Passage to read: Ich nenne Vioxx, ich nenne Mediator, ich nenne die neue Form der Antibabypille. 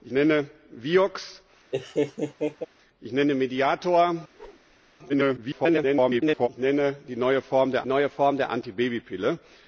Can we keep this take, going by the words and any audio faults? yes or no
no